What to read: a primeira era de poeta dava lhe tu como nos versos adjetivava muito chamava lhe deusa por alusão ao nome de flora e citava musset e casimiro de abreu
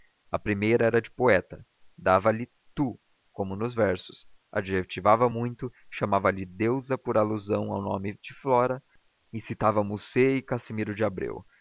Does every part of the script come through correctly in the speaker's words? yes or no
yes